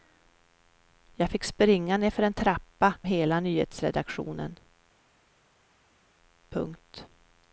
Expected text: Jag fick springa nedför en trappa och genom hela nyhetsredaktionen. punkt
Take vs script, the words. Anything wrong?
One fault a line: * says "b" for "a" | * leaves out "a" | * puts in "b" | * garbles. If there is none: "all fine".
* leaves out "och genom"